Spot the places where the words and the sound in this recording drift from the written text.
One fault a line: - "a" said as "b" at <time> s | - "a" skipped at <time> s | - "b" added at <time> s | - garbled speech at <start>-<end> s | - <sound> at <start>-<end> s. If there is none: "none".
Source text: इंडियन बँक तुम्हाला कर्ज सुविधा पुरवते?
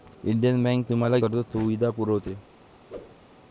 - whoosh at 2.9-3.2 s